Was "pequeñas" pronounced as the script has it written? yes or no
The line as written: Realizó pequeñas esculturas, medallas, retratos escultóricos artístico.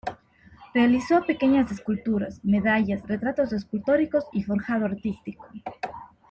yes